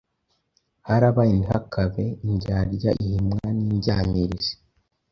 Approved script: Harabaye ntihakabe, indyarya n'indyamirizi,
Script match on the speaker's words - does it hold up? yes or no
no